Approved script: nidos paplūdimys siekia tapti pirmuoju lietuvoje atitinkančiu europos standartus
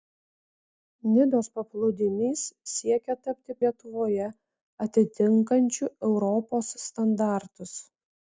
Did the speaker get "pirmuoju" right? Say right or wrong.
wrong